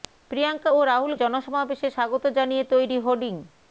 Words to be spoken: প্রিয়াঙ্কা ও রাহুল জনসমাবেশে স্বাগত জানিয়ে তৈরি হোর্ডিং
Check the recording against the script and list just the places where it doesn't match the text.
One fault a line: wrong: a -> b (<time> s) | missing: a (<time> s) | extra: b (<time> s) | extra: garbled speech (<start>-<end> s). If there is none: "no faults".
no faults